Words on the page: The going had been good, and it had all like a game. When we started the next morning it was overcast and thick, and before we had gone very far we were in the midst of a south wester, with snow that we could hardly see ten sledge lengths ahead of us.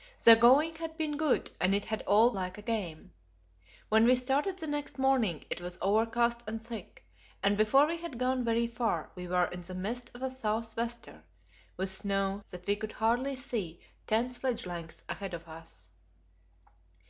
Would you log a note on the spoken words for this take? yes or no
no